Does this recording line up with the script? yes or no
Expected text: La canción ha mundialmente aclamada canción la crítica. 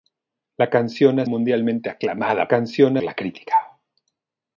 yes